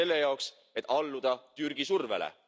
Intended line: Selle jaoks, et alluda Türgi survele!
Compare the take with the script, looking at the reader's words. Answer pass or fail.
pass